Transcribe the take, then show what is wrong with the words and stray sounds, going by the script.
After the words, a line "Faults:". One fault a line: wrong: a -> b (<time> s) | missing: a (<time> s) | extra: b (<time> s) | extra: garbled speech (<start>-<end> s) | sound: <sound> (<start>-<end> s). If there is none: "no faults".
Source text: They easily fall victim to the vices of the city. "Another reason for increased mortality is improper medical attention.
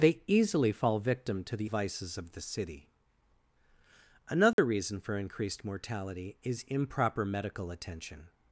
They easily fall victim to the vices of the city. "Another reason for increased mortality is improper medical attention.
Faults:
sound: dropout (4.5-4.6 s)